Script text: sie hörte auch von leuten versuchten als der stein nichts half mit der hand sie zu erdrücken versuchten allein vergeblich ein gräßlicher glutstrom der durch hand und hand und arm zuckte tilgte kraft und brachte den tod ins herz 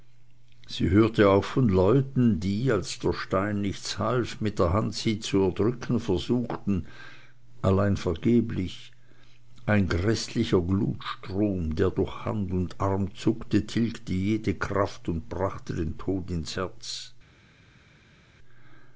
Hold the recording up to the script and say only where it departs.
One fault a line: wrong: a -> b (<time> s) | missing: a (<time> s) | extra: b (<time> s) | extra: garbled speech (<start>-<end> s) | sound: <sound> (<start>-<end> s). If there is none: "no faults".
wrong: versuchten -> die (2.4 s)
missing: hand und (12.8 s)
extra: jede (14.1 s)